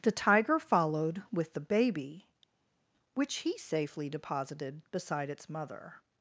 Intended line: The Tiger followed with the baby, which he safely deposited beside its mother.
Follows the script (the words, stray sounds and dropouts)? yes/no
yes